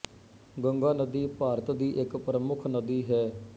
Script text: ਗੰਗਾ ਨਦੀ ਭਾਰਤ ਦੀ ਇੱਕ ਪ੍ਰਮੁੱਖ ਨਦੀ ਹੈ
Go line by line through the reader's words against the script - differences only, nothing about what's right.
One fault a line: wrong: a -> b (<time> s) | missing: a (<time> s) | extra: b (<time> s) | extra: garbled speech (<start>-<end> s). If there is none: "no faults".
no faults